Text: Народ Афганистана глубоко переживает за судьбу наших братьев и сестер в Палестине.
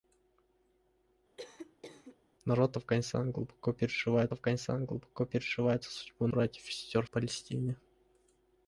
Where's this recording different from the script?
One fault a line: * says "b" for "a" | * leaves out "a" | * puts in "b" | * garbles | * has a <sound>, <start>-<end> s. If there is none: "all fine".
* has a cough, 1.4-2.2 s
* puts in "Афганистана глубоко переживает"
* leaves out "наших"
* leaves out "в"